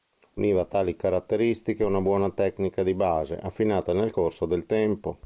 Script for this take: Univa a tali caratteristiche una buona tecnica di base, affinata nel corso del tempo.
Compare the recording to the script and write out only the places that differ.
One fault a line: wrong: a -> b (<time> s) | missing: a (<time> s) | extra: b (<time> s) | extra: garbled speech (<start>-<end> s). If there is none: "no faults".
no faults